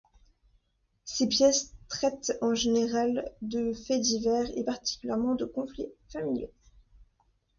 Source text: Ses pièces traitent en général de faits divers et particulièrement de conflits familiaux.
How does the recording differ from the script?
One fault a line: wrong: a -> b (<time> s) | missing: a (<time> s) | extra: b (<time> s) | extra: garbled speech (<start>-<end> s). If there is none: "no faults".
no faults